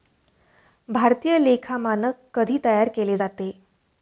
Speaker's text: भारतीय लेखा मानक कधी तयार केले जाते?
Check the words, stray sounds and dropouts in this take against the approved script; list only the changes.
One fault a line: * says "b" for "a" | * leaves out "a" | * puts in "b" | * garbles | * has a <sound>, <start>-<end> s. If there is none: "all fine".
all fine